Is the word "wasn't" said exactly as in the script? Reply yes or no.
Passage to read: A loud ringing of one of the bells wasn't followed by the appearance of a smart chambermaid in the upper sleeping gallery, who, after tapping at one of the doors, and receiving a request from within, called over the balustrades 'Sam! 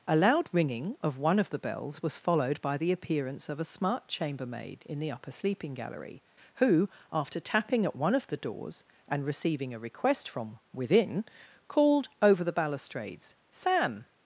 no